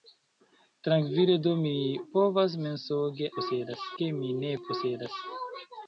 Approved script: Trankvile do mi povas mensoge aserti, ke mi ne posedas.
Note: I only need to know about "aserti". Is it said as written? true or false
false